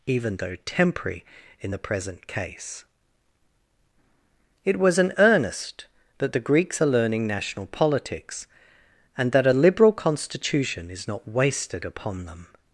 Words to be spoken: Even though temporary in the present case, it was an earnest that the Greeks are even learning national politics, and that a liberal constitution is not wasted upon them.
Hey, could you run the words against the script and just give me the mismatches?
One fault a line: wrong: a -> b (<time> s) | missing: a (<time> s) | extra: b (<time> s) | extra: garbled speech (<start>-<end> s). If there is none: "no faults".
missing: even (6.9 s)